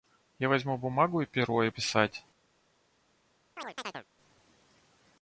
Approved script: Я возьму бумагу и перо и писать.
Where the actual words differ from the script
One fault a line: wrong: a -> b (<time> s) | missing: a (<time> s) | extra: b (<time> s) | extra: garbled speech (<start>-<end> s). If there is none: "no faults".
no faults